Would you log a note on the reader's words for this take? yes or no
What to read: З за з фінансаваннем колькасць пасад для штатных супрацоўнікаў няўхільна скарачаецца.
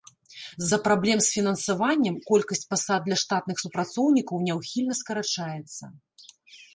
yes